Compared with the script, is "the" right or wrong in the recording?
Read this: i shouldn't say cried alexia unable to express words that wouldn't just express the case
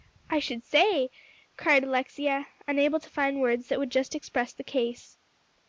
right